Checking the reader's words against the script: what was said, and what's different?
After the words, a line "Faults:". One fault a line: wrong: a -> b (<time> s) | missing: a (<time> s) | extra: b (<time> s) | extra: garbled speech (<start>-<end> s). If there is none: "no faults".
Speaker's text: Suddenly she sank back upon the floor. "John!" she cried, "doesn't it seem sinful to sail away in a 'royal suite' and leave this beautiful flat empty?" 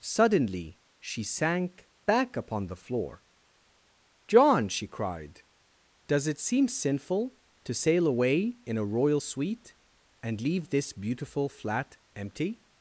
Suddenly she sank back upon the floor. "John!" she cried, "does it seem sinful to sail away in a 'royal suite' and leave this beautiful flat empty?"
Faults:
wrong: doesn't -> does (6.1 s)